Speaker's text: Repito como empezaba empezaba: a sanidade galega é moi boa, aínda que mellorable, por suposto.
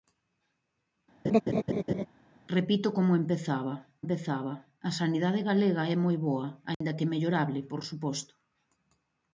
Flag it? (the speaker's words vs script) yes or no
no